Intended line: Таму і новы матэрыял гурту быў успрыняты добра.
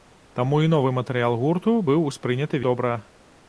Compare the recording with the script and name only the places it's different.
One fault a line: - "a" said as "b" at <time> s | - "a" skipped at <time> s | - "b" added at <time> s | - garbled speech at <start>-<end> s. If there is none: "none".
none